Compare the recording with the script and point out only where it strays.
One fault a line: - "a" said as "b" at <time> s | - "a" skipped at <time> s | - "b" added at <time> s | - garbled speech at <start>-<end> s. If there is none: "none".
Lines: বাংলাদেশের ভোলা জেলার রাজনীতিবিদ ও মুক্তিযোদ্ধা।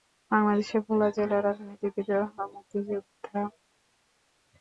none